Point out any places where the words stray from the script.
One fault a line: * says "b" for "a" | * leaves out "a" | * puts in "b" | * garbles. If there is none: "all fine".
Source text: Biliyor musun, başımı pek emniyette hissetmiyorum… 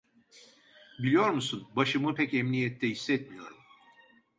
all fine